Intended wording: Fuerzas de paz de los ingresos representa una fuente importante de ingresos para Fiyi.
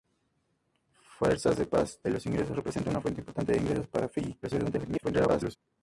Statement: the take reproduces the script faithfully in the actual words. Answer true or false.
false